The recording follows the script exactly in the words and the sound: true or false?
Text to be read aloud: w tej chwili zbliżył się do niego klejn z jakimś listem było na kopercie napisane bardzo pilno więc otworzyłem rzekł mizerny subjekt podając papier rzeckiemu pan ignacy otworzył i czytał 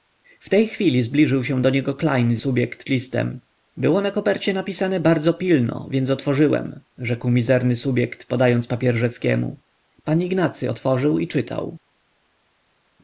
false